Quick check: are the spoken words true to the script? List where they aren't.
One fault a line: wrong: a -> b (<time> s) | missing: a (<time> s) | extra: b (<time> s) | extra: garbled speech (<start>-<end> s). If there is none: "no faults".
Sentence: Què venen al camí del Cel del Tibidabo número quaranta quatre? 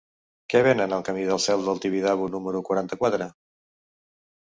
no faults